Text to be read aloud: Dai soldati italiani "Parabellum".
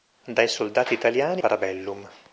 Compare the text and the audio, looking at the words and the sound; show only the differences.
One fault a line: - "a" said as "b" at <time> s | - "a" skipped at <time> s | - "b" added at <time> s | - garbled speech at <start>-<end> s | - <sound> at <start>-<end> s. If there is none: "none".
none